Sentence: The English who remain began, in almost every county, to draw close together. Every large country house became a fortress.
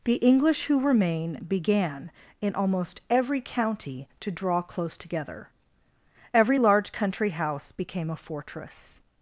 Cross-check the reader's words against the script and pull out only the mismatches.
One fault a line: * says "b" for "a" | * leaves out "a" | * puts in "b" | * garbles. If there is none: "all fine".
all fine